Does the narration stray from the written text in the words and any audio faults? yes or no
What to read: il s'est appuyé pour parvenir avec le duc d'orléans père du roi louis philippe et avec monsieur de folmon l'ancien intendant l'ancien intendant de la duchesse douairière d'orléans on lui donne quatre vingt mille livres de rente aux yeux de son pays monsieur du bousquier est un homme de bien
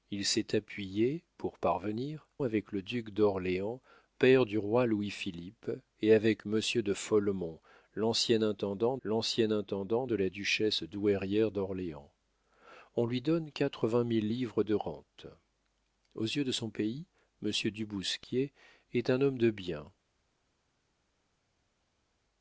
no